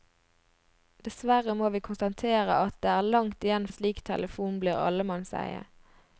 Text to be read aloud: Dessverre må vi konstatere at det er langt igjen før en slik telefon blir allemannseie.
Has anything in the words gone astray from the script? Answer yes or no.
yes